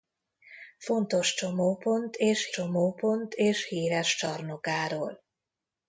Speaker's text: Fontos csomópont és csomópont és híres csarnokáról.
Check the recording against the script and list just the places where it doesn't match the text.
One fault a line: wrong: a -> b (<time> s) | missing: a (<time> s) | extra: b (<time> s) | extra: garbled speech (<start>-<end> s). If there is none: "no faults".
no faults